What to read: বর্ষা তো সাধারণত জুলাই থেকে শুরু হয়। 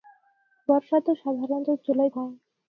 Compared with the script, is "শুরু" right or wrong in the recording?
wrong